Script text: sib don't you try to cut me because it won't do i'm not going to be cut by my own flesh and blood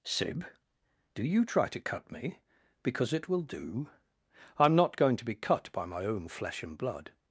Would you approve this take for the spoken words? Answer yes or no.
no